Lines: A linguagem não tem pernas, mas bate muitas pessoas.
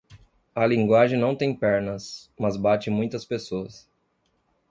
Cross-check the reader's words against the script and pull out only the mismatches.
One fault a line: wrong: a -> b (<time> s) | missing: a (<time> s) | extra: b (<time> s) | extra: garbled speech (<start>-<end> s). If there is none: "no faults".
no faults